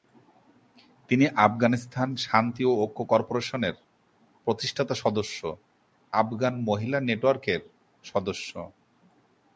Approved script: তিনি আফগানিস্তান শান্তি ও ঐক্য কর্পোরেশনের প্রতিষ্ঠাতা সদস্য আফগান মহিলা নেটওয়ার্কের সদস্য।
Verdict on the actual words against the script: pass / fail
pass